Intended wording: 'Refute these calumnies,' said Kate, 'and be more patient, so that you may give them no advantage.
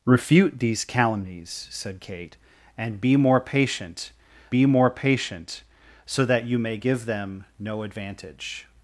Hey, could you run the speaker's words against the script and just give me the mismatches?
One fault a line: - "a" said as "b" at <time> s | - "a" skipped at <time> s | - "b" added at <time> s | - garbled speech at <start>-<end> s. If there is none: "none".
- "be more patient" added at 4.5 s